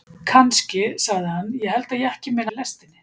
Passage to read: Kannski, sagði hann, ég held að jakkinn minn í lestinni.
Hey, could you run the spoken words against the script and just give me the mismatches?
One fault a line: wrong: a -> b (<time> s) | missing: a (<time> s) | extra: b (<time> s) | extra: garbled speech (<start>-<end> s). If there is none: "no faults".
no faults